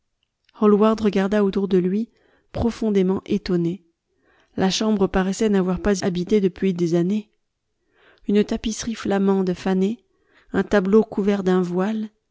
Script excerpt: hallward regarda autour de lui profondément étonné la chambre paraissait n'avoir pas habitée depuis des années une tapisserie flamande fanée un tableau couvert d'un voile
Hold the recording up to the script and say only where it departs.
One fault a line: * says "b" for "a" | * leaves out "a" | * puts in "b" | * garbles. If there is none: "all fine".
all fine